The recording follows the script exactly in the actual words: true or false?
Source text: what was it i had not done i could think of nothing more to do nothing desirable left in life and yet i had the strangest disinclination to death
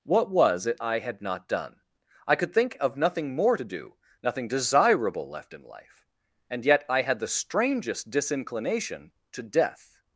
true